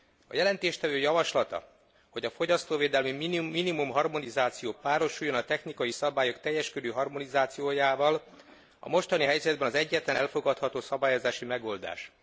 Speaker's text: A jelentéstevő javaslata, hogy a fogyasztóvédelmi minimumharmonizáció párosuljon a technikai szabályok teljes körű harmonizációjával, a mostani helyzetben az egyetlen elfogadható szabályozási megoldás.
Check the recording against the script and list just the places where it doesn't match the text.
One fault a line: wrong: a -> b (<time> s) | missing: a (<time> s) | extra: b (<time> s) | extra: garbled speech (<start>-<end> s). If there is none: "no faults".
no faults